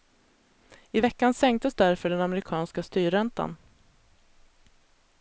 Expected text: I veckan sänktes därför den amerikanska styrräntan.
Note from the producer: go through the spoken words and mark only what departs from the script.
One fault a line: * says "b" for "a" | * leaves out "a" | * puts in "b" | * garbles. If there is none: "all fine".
all fine